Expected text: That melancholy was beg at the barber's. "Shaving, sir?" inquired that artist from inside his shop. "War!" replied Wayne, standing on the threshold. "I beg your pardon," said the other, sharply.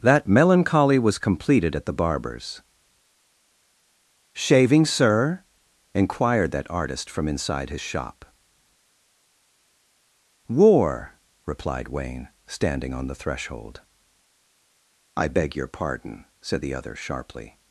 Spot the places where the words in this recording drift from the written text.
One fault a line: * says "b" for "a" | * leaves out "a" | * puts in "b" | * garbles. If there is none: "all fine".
* says "completed" for "beg"